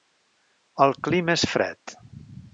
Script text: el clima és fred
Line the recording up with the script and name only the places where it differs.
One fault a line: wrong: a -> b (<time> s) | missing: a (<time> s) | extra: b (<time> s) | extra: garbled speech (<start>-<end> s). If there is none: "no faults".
no faults